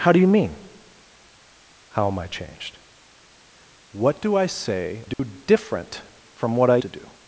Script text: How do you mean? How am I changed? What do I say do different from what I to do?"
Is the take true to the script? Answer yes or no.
yes